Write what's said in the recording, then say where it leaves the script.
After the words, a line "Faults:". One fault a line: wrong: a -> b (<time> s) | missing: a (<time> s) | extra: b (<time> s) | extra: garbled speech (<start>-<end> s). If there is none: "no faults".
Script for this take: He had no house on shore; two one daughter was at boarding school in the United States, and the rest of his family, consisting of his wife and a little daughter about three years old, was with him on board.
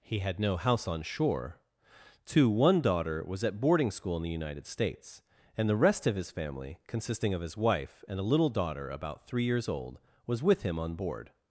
He had no house on shore; two one daughter was at boarding school in the United States, and the rest of his family, consisting of his wife and a little daughter about three years old, was with him on board.
Faults:
no faults